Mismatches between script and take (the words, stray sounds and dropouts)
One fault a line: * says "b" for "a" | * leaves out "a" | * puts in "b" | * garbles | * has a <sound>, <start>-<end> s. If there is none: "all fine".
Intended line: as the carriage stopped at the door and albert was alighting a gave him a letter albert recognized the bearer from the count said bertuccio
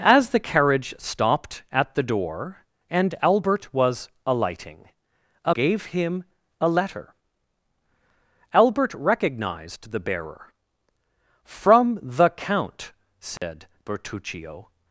* has a dropout, 13.4-13.4 s